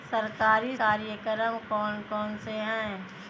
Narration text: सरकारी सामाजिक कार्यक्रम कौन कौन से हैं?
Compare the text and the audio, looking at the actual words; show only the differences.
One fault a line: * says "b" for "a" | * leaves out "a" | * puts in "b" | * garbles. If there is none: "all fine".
* leaves out "सामाजिक"